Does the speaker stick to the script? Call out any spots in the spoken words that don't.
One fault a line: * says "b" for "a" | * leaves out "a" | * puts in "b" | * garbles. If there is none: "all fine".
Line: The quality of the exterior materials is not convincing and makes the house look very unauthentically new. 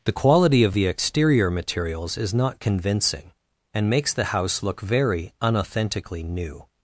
all fine